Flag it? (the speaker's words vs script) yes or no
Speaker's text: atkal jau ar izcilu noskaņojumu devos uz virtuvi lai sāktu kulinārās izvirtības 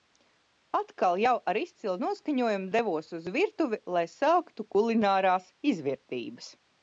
no